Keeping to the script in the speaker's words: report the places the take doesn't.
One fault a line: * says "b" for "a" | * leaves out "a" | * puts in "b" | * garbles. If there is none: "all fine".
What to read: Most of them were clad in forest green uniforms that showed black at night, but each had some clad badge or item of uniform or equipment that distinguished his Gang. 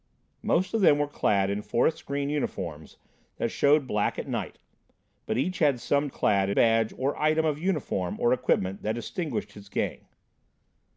all fine